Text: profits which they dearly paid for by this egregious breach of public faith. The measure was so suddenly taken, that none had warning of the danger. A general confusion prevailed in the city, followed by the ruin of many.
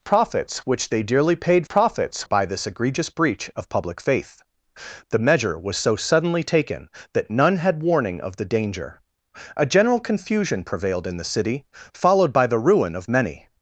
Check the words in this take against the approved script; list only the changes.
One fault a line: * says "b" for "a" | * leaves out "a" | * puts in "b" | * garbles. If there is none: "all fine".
* says "profits" for "for"